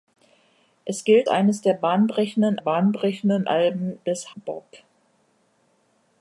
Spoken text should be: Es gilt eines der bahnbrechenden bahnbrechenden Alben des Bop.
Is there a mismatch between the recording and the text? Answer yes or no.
no